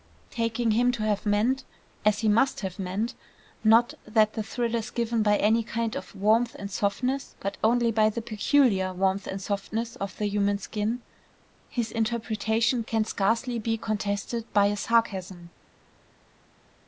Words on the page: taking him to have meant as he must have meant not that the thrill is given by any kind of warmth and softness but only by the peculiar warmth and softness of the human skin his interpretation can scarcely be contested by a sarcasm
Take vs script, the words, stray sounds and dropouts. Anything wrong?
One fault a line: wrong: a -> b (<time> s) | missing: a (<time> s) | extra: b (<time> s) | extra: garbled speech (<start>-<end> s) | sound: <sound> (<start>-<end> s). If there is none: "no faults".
no faults